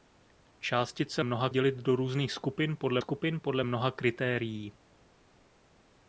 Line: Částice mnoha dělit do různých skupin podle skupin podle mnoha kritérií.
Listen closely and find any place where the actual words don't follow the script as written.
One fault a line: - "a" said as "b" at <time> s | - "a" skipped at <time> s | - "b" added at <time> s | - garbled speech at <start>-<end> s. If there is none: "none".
none